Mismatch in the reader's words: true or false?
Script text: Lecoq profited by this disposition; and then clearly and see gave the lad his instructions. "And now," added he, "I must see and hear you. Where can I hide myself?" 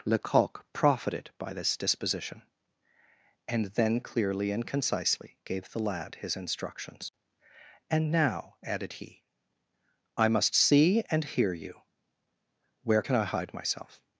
true